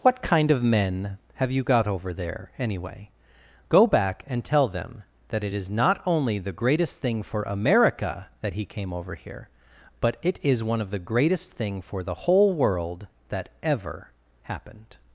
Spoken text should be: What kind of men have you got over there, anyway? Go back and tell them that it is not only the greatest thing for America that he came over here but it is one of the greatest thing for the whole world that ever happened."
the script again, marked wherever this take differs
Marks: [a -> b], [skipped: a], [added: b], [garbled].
What kind of men have you got over there, anyway? Go back and tell them that it is not only the greatest thing for America that he came over here but it is one of the greatest thing for the whole world that ever happened."